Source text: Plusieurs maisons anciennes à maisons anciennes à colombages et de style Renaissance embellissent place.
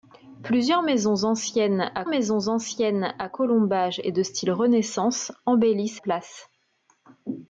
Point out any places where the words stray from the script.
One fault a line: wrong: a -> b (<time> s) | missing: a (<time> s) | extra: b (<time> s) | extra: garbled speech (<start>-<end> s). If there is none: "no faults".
no faults